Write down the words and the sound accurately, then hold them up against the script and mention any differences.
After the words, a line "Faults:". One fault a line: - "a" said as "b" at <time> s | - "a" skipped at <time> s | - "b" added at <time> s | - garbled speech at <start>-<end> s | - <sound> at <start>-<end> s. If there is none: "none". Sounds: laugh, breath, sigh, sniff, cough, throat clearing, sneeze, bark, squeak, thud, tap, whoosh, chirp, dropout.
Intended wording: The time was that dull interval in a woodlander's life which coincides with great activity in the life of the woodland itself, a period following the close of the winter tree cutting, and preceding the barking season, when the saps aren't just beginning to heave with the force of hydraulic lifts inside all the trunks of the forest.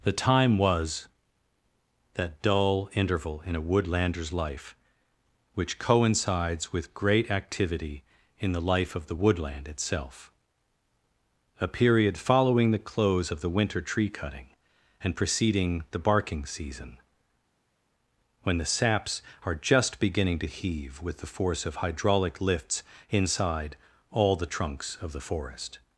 The time was that dull interval in a woodlander's life which coincides with great activity in the life of the woodland itself, a period following the close of the winter tree cutting, and preceding the barking season, when the saps are just beginning to heave with the force of hydraulic lifts inside all the trunks of the forest.
Faults:
- "aren't" said as "are" at 19.4 s